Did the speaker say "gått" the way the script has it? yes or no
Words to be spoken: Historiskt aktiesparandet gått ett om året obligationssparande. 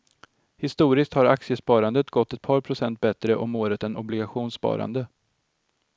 yes